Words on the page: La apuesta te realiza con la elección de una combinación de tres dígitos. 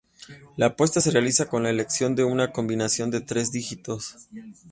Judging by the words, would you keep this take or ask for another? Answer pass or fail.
fail